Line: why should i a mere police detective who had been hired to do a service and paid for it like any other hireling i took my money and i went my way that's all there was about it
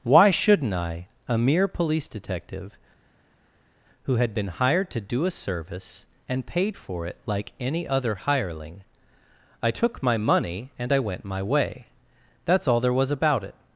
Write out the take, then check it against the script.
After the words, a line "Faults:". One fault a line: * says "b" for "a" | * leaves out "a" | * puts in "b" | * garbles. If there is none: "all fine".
why shouldn't i a mere police detective who had been hired to do a service and paid for it like any other hireling i took my money and i went my way that's all there was about it
Faults:
* says "shouldn't" for "should"